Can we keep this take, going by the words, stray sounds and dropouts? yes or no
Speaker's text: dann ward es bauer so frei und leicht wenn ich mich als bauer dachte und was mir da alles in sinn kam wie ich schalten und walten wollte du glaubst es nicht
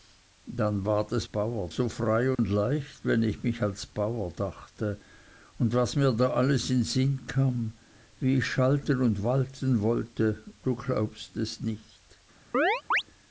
no